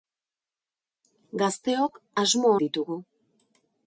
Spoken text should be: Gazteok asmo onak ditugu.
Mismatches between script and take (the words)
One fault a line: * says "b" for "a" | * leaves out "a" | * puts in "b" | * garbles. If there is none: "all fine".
* leaves out "onak"